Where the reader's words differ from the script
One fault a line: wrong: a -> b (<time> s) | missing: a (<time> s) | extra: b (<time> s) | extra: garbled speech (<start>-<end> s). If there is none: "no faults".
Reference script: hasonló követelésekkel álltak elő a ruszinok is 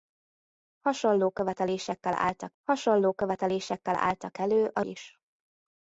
extra: hasonló követelésekkel álltak (2.6 s)
missing: ruszinok (4.8 s)